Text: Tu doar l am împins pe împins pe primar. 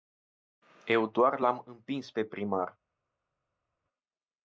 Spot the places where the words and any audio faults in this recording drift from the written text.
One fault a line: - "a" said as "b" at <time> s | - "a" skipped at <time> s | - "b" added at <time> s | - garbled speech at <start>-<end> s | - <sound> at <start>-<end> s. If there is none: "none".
- "Tu" said as "Eu" at 0.9 s
- "împins pe" skipped at 2.2 s